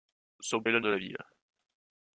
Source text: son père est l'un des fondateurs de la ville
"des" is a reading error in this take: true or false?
true